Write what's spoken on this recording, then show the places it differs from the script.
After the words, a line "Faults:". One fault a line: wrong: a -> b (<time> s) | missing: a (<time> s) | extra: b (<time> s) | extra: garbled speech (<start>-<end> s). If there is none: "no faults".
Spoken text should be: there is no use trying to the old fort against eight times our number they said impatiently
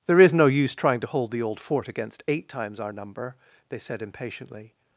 there is no use trying to hold the old fort against eight times our number they said impatiently
Faults:
extra: hold (1.1 s)